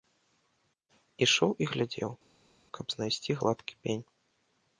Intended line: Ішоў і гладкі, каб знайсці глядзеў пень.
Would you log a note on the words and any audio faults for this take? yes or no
yes